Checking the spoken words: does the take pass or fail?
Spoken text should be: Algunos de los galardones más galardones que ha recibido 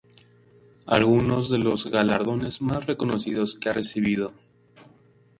fail